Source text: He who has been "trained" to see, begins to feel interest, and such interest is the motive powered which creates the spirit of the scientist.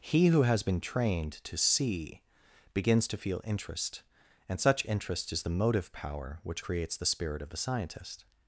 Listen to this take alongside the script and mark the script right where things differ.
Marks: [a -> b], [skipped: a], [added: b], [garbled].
He who has been "trained" to see, begins to feel interest, and such interest is the motive [powered -> power] which creates the spirit of the scientist.